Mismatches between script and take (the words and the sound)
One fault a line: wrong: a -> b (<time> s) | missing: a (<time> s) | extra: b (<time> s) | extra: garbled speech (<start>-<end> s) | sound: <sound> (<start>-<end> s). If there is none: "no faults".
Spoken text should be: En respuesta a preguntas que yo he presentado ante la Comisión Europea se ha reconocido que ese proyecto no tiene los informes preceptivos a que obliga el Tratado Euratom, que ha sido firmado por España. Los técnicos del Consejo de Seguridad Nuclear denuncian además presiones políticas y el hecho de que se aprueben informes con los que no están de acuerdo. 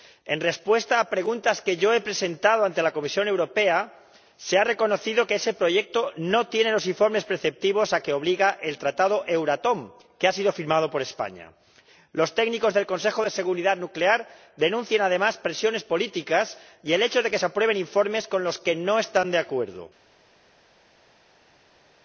no faults